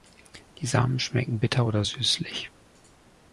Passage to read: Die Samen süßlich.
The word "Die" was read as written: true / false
true